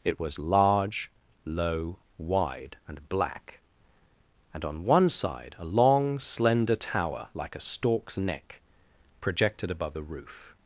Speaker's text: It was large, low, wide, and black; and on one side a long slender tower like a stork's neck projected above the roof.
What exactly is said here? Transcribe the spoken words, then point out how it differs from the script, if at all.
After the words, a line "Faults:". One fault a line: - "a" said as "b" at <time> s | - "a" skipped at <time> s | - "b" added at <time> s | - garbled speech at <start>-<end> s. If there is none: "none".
It was large, low, wide, and black; and on one side a long slender tower like a stork's neck projected above the roof.
Faults:
none